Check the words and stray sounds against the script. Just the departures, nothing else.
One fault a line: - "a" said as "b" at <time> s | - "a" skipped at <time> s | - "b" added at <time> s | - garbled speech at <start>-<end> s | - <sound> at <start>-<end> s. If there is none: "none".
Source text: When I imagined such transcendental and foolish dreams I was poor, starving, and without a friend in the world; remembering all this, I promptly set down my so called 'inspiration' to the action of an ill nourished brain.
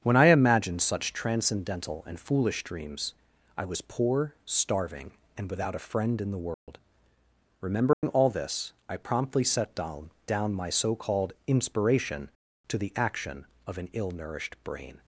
- dropout at 6.5-6.7 s
- dropout at 7.9-8.0 s
- "down" added at 10.2 s